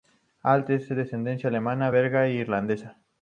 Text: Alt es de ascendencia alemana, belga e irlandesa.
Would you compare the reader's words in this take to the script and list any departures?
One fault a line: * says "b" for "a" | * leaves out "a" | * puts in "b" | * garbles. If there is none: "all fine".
all fine